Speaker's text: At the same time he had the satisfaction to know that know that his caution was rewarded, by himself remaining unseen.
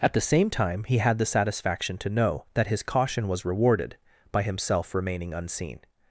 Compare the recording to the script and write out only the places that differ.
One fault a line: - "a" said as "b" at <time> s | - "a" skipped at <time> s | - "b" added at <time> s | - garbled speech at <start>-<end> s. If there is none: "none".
- "know that" skipped at 2.6 s